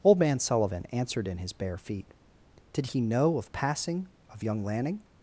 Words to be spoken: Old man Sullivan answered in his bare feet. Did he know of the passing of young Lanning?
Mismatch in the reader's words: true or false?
true